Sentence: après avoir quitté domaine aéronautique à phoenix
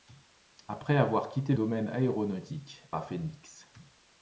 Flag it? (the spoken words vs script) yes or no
no